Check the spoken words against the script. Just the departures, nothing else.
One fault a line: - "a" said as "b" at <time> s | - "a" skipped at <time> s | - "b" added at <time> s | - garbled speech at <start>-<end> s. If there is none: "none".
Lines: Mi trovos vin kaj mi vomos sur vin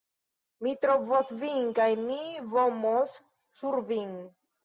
none